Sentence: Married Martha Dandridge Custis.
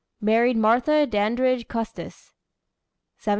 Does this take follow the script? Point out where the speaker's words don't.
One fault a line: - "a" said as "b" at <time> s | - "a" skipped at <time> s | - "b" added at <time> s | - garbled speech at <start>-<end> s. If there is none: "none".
none